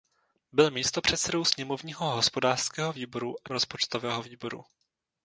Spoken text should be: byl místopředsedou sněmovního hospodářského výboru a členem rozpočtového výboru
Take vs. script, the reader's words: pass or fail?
fail